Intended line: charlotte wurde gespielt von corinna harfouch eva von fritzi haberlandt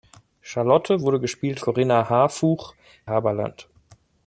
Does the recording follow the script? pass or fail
fail